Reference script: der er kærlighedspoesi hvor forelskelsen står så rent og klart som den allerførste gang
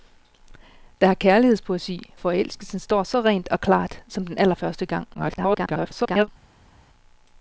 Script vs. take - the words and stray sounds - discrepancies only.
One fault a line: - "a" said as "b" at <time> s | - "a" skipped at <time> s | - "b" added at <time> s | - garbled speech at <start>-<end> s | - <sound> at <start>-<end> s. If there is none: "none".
- "hvor" skipped at 2.1 s
- garbled speech at 5.1-6.3 s